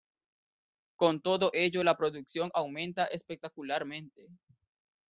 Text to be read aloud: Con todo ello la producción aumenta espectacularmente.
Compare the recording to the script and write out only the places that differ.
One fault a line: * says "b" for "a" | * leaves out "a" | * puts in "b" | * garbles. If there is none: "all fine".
all fine